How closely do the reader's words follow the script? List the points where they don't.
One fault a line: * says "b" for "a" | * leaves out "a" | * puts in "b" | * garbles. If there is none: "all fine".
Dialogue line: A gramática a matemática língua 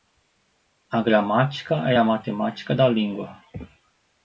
* puts in "é"
* puts in "da"